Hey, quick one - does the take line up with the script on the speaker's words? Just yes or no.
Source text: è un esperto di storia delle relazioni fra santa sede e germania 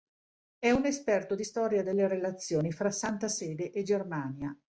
yes